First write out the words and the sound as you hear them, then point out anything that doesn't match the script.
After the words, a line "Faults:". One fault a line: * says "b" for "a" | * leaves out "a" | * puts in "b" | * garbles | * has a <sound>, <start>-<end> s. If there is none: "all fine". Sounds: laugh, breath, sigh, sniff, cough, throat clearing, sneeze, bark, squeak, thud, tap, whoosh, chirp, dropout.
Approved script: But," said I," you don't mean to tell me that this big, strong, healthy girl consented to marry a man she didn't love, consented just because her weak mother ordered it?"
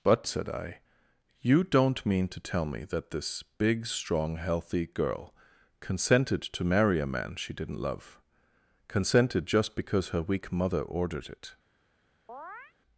But," said I," you don't mean to tell me that this big, strong, healthy girl consented to marry a man she didn't love, consented just because her weak mother ordered it?"
Faults:
* has a chirp, 12.3-12.7 s